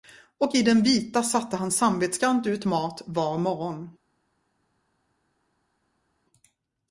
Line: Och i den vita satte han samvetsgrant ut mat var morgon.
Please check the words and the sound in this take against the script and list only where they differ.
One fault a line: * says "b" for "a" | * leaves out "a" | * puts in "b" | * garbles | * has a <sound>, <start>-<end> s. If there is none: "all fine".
all fine